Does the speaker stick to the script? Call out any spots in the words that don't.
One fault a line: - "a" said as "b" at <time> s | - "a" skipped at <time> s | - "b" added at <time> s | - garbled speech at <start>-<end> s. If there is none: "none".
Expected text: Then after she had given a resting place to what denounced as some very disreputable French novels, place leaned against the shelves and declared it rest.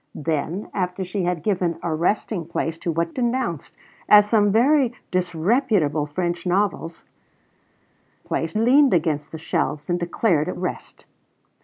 none